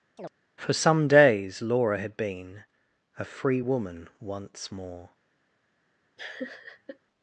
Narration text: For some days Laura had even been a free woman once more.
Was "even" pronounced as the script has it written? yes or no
no